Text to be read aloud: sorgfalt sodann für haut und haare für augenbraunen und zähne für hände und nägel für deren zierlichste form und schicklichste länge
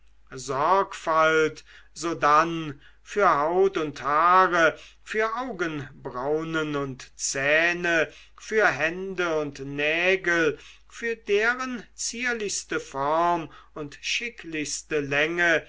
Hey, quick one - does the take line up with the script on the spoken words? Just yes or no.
yes